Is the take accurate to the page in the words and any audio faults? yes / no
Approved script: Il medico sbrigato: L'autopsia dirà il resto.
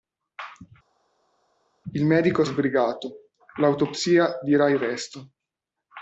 yes